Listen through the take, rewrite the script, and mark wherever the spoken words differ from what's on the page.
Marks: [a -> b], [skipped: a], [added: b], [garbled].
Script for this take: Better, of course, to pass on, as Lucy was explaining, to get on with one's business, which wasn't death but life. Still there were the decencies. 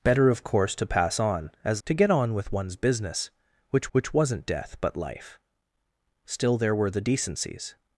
Better, of course, to pass on, as [skipped: Lucy was explaining,] to get on with one's business, which [added: which] wasn't death but life. Still there were the decencies.